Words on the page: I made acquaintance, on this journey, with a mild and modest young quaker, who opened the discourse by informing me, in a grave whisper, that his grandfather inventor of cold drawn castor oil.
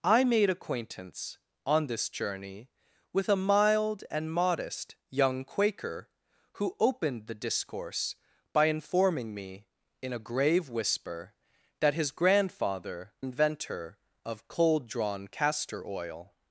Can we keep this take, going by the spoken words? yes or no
yes